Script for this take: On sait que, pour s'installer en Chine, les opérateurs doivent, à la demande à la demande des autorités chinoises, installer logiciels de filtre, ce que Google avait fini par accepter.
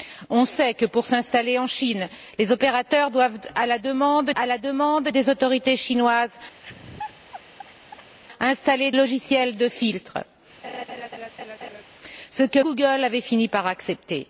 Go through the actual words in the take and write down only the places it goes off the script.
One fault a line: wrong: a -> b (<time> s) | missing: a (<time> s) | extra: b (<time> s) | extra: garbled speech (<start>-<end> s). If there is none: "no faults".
no faults